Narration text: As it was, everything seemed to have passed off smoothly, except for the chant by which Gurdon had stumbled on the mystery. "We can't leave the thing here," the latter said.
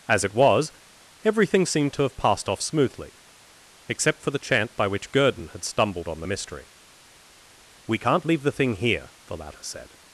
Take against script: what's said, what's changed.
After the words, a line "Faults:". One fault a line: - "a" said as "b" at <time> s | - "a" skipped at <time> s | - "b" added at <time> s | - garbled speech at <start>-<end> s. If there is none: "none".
As it was, everything seemed to have passed off smoothly, except for the chant by which Gurdon had stumbled on the mystery. "We can't leave the thing here," the latter said.
Faults:
none